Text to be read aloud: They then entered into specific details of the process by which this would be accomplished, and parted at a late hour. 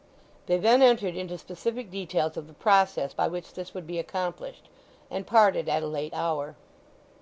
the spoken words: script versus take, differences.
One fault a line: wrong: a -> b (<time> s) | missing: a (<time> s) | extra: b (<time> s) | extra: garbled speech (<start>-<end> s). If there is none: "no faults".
no faults